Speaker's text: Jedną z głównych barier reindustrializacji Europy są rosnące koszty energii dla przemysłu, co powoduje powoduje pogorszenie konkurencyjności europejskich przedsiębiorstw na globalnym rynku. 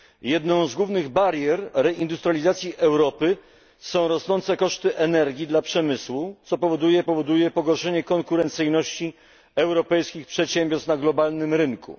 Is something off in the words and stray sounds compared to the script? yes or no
no